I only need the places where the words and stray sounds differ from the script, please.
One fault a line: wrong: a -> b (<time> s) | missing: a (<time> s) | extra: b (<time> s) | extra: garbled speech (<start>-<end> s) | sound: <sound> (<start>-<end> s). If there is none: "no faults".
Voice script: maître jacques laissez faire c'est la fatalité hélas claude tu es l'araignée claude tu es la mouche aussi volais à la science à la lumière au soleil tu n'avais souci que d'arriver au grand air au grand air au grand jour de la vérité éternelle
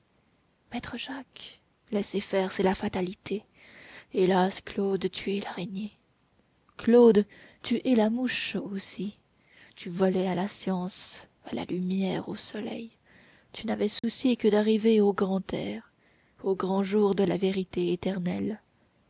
extra: tu (9.8 s)
sound: dropout (14.0-14.0 s)
missing: air au grand (16.8 s)